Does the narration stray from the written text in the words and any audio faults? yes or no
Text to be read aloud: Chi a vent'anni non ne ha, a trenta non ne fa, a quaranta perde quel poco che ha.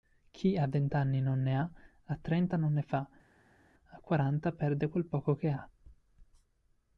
no